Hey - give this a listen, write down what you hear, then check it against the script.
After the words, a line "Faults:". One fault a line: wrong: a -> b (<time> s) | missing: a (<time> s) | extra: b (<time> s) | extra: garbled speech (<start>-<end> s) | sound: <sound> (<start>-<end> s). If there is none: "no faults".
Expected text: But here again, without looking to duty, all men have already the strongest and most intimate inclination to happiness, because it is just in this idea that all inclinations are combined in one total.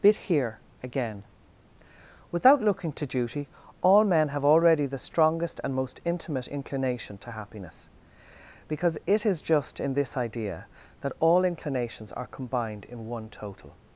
Bit here again, without looking to duty, all men have already the strongest and most intimate inclination to happiness, because it is just in this idea that all inclinations are combined in one total.
Faults:
wrong: But -> Bit (0.0 s)